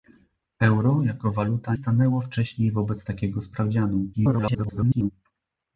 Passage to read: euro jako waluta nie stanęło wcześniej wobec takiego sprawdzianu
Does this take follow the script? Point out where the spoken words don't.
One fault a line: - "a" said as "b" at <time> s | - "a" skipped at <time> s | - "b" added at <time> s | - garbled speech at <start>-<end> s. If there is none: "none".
- "nie" skipped at 1.8 s
- garbled speech at 4.1-5.1 s